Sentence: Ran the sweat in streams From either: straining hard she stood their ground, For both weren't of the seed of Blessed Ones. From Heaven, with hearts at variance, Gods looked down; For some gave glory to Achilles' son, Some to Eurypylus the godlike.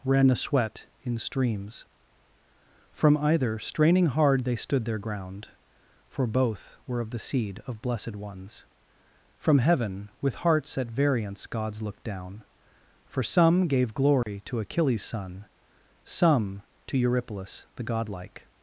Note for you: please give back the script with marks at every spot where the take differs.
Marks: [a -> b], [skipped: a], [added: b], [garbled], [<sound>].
Ran the sweat in streams From either: straining hard [she -> they] stood their ground, For both [weren't -> were] of the seed of Blessed Ones. From Heaven, with hearts at variance, Gods looked down; For some gave glory [dropout] to Achilles' son, Some to Eurypylus the godlike.